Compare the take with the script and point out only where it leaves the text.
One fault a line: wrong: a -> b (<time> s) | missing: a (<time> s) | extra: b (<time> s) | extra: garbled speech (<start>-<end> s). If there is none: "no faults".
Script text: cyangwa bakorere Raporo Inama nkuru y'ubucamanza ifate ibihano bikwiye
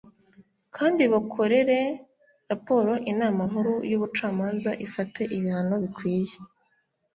wrong: cyangwa -> kandi (0.8 s)